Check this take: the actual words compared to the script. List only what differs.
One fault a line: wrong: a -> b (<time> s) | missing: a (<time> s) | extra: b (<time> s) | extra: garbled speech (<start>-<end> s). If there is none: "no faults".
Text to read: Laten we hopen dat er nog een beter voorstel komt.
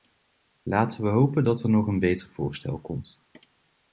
no faults